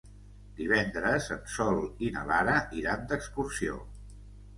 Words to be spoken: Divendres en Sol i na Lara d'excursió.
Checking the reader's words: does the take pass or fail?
fail